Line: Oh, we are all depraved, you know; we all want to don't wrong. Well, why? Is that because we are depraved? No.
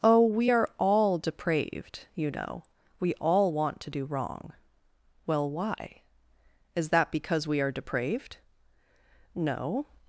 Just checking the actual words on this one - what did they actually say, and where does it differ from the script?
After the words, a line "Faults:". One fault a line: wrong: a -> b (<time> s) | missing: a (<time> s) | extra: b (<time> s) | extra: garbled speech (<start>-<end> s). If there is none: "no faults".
Oh, we are all depraved, you know; we all want to do wrong. Well, why? Is that because we are depraved? No.
Faults:
wrong: don't -> do (3.9 s)